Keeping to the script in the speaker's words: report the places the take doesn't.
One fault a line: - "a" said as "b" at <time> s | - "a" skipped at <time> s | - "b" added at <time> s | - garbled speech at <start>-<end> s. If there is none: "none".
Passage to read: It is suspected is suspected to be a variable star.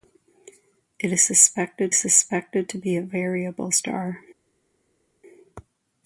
none